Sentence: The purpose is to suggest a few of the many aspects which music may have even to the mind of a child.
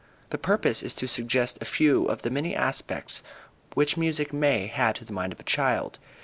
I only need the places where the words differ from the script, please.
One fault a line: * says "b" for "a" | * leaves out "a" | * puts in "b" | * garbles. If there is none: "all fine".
* leaves out "even"